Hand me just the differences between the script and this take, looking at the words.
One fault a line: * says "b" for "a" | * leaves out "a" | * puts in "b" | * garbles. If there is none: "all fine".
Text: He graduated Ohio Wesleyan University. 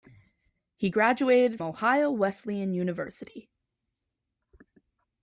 all fine